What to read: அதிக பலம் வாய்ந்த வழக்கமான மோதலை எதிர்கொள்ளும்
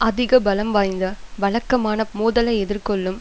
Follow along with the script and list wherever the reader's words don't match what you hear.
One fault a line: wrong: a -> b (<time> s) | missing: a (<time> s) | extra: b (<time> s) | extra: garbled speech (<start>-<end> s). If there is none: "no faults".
no faults